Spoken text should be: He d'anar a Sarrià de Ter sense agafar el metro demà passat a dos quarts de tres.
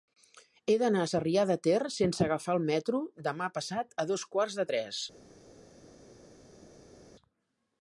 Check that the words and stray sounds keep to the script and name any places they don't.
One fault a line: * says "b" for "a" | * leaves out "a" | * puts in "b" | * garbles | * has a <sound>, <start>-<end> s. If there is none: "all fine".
all fine